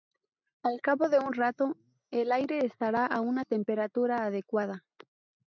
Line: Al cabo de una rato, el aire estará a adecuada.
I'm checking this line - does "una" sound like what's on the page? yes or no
no